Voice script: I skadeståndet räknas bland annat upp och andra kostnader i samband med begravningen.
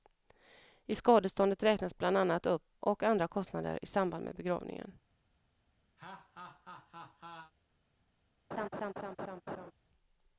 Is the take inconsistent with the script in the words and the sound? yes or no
yes